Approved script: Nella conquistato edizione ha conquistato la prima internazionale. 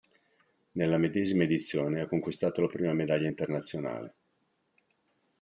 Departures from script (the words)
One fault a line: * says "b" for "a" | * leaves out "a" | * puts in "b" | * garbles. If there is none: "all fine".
* says "medesima" for "conquistato"
* puts in "medaglia"